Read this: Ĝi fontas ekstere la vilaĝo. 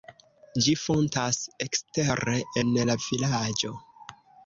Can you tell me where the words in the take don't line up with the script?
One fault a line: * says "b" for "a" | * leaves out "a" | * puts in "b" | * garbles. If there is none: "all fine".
* puts in "en"